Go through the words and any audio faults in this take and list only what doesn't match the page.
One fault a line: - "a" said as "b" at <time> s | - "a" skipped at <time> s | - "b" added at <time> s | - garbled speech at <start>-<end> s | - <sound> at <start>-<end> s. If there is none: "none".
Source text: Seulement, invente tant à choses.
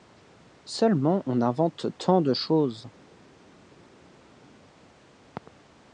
- "on" added at 1.2 s
- "à" said as "de" at 2.2 s